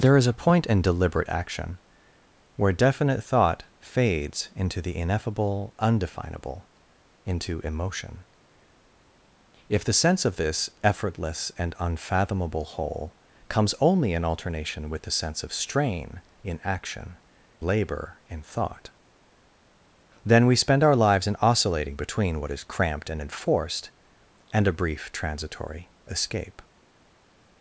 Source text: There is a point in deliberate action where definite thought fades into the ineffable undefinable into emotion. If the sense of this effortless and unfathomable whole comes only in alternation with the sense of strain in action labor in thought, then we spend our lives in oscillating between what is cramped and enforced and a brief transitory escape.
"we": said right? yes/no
yes